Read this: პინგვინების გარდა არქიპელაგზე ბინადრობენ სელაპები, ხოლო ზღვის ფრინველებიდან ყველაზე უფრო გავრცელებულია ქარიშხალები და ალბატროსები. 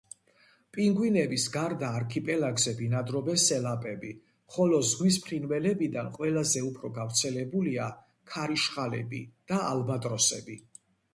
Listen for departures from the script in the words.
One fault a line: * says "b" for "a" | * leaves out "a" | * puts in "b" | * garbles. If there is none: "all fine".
all fine